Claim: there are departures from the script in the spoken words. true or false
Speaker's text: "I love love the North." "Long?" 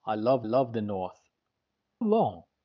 false